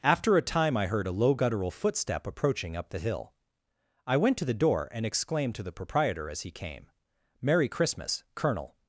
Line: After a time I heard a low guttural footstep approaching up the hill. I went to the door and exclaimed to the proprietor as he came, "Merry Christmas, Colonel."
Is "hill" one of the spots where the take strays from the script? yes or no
no